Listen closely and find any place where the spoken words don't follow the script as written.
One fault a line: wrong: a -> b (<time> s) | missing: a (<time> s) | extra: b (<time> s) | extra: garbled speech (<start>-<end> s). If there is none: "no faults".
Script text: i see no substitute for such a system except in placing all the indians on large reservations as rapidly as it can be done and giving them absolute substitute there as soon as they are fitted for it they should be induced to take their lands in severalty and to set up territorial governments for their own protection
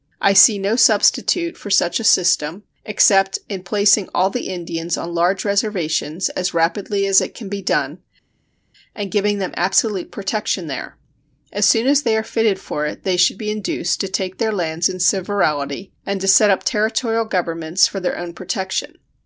wrong: substitute -> protection (10.1 s)